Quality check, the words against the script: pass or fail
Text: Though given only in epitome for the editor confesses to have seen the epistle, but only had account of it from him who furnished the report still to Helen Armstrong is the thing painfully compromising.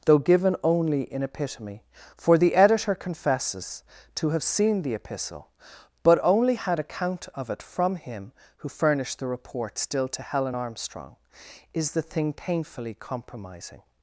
pass